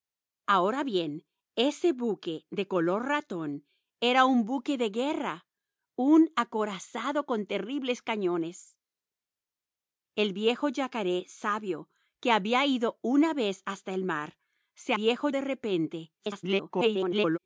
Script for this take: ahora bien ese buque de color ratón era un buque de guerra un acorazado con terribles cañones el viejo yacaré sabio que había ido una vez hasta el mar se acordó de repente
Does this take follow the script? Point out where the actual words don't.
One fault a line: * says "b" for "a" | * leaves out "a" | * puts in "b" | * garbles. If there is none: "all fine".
* says "viejo" for "acordó"
* garbles